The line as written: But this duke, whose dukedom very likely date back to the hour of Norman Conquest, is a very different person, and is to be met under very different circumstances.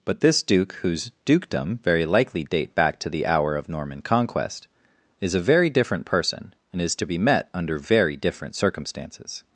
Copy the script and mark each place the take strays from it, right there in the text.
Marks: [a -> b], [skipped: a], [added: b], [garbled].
But this duke, whose dukedom very likely date back to the hour of Norman Conquest, is a very different person, and is to be met under very different circumstances.